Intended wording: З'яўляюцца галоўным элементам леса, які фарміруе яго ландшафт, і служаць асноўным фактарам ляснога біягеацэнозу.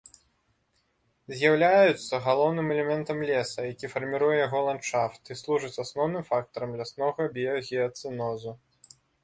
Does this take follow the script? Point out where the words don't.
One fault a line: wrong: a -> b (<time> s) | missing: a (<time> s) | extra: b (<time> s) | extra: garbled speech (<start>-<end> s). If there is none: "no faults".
no faults